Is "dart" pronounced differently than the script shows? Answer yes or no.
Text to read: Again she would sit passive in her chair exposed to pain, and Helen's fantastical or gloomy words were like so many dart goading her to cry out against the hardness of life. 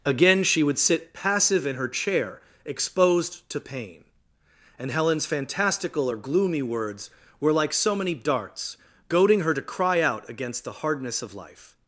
yes